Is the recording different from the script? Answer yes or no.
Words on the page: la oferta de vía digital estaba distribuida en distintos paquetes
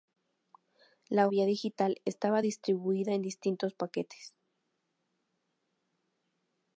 yes